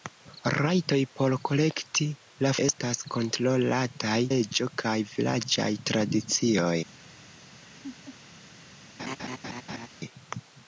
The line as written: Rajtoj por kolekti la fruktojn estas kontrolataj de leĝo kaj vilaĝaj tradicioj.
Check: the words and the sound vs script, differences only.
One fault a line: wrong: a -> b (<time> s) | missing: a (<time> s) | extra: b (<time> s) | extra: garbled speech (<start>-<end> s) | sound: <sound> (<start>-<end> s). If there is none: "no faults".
missing: fruktojn (2.5 s)
missing: de (4.2 s)
sound: laugh (7.7-8.2 s)
sound: laugh (9.0-9.9 s)